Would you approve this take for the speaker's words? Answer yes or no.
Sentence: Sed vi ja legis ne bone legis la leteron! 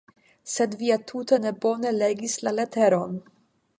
no